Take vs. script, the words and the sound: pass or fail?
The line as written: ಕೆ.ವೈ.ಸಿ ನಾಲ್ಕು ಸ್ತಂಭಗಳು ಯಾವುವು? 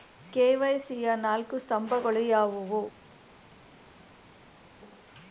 fail